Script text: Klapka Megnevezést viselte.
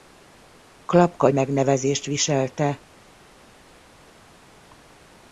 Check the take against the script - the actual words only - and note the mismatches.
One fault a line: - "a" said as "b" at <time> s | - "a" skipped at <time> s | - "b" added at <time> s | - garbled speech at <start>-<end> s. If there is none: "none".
none